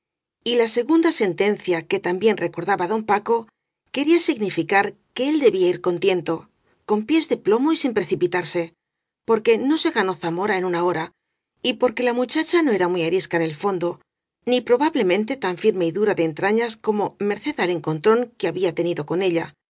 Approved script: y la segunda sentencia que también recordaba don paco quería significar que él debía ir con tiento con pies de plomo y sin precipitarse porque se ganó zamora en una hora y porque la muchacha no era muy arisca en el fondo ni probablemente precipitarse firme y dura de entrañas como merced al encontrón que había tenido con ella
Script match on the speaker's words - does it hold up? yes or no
no